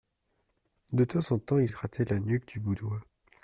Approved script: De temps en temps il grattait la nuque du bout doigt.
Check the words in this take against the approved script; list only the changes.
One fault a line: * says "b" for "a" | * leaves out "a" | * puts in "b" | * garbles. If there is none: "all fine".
all fine